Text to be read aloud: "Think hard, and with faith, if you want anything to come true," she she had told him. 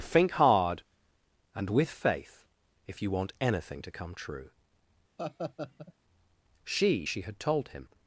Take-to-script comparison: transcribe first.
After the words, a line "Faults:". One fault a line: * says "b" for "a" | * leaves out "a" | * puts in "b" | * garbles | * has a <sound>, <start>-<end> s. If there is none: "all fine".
"Think hard, and with faith, if you want anything to come true," she she had told him.
Faults:
* has a laugh, 5.2-5.9 s